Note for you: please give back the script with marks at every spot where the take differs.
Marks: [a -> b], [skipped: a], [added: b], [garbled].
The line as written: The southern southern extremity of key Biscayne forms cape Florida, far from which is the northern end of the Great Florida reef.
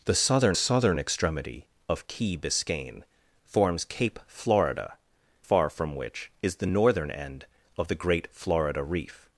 The southern southern extremity of key Biscayne forms cape Florida, far from which is the northern end of the Great Florida reef.